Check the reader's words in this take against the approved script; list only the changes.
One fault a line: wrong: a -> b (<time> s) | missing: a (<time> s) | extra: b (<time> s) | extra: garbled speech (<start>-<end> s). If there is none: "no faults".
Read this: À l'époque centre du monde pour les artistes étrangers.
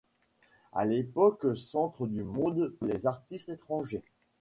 missing: pour (2.7 s)